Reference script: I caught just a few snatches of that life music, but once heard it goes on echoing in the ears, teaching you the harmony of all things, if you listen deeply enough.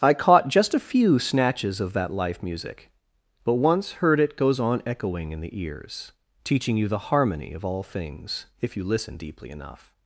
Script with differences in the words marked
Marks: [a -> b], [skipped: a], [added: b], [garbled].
I caught just a few snatches of that life music, but once heard it goes on echoing in the ears, teaching you the harmony of all things, if you listen deeply enough.